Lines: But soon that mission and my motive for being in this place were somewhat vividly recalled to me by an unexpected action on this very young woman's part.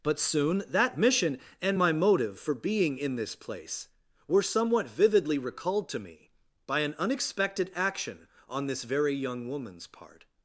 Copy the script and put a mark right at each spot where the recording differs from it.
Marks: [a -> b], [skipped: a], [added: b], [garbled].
But soon that mission and my motive for being in this place were somewhat vividly recalled to me by an unexpected action on this very young woman's part.